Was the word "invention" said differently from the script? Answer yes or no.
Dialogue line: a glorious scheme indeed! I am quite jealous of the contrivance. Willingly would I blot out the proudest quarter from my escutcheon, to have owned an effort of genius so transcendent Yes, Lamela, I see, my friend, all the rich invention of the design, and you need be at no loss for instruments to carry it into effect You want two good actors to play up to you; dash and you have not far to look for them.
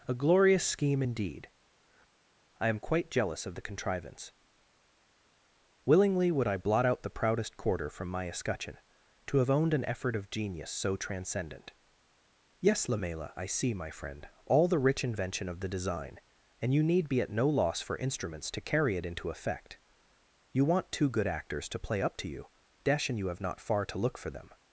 no